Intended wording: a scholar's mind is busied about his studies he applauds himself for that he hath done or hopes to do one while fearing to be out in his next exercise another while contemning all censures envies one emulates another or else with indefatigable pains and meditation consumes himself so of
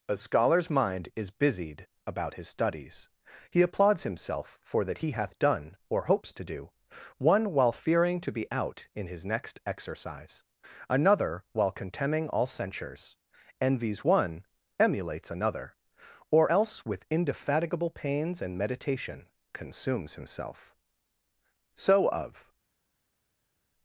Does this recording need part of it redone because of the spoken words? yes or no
no